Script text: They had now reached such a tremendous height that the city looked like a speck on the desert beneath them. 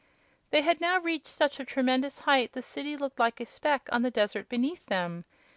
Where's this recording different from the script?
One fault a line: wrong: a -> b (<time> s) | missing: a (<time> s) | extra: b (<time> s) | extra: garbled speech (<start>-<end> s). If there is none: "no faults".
missing: that (2.5 s)